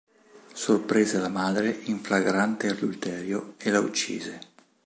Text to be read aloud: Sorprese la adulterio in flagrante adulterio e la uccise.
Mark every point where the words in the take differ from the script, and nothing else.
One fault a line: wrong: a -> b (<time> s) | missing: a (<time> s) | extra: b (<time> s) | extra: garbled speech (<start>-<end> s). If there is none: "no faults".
wrong: adulterio -> madre (1.3 s)